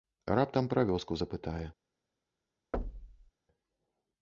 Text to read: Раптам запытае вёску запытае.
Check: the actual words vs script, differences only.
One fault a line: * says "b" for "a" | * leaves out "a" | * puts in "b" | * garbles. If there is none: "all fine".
* says "пра" for "запытае"